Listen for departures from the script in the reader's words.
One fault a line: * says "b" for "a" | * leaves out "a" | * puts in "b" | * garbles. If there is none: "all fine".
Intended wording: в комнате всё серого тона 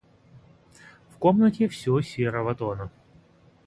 all fine